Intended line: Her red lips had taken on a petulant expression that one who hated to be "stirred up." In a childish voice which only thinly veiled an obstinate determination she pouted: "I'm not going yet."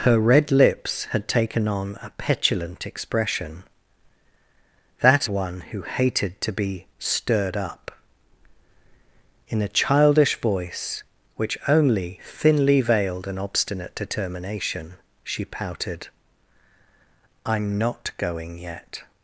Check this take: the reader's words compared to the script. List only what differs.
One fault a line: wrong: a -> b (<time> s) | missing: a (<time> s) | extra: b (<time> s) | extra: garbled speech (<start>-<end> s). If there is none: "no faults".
no faults